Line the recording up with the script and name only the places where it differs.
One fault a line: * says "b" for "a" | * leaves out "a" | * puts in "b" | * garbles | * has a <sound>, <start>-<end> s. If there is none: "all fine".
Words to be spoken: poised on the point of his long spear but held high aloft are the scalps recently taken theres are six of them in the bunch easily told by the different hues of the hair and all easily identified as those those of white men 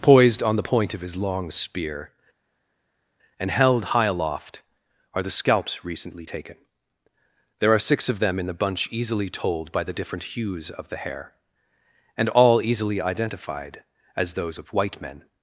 * says "and" for "but"
* says "there" for "theres"
* leaves out "those"